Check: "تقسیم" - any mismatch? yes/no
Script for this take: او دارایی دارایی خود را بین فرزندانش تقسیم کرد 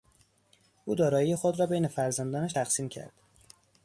no